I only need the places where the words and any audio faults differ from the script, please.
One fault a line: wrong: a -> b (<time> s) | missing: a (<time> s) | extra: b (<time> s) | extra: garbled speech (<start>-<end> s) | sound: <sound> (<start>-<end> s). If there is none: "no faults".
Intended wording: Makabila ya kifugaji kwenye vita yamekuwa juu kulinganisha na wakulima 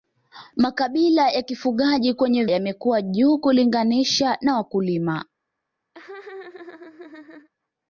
missing: vita (2.5 s)
sound: laugh (5.9-7.5 s)